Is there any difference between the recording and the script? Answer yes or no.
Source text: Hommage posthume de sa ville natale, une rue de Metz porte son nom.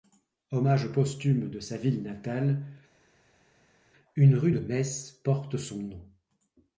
no